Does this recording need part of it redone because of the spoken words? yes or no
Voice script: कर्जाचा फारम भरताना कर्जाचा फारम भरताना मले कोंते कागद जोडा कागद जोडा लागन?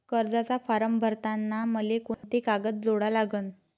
yes